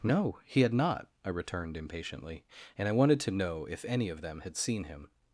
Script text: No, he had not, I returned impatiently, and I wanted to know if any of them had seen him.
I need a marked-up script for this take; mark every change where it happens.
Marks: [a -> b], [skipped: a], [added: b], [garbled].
No, he had not, I returned impatiently, and I wanted to know if any of them had seen him.